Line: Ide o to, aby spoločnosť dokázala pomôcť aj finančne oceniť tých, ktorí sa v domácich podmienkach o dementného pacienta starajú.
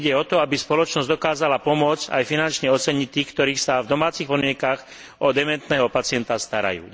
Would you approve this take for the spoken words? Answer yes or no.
yes